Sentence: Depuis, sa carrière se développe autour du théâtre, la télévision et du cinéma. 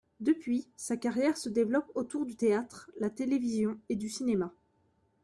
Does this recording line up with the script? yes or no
yes